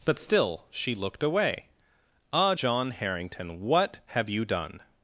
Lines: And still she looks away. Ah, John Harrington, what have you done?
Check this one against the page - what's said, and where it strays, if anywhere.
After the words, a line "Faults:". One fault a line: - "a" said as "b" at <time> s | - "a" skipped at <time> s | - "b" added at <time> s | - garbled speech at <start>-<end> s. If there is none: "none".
But still she looked away. Ah, John Harrington, what have you done?
Faults:
- "And" said as "But" at 0.1 s
- "looks" said as "looked" at 0.9 s